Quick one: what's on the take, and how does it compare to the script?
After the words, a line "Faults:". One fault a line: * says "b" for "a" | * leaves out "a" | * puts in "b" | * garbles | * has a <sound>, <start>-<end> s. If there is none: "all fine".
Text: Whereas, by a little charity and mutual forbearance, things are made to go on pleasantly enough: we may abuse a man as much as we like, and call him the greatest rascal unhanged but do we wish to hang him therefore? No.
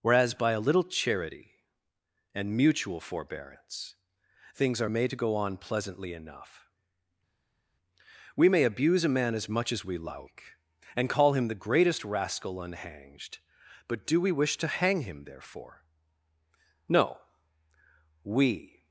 Whereas, by a little charity and mutual forbearance, things are made to go on pleasantly enough: we may abuse a man as much as we like, and call him the greatest rascal unhanged but do we wish to hang him therefore? No. We
Faults:
* puts in "We"